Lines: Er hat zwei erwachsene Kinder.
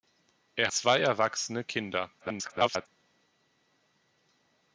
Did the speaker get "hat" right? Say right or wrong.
wrong